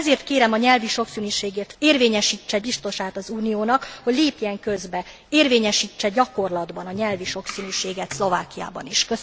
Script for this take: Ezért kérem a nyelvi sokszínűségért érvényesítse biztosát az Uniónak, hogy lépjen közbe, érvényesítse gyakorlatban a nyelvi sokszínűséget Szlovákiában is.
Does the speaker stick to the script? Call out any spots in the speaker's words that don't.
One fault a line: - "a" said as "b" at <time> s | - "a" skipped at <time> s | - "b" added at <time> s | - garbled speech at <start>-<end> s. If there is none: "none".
none